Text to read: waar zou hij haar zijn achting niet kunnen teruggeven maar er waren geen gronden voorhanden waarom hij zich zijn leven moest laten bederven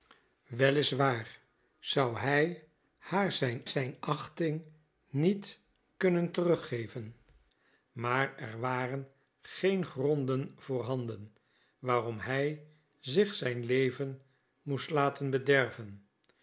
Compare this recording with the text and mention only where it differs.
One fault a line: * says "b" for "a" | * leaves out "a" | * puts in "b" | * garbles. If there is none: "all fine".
* puts in "zijn"